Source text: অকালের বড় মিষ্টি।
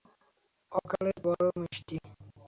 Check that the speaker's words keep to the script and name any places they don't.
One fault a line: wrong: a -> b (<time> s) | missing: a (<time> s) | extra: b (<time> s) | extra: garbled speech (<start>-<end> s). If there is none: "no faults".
no faults